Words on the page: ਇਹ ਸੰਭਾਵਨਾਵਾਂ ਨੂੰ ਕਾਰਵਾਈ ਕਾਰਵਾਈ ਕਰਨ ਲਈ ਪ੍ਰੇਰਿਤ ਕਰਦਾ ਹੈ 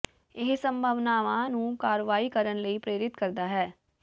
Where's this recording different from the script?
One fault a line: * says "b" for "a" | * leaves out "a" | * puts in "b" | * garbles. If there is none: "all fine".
* leaves out "ਕਾਰਵਾਈ"